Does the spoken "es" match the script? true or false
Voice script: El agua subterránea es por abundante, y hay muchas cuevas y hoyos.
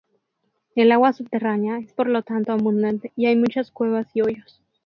true